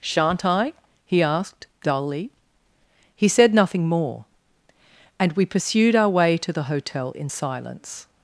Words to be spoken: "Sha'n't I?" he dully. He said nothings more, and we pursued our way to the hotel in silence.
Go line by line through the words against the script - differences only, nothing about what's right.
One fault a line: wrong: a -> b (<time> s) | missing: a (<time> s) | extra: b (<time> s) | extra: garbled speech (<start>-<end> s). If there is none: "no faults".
extra: asked (1.2 s)
wrong: nothings -> nothing (3.5 s)